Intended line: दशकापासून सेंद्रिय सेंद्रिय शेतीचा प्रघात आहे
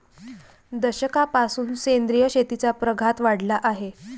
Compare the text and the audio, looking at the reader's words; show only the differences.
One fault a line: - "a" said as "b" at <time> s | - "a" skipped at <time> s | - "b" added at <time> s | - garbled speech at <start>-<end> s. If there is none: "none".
- "सेंद्रिय" skipped at 2.3 s
- "वाढला" added at 3.2 s